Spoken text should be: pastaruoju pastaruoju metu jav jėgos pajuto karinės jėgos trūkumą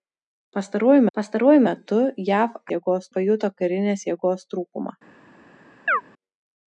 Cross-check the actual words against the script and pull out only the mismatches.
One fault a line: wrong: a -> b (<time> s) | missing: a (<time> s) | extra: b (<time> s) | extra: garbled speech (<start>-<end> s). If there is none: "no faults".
no faults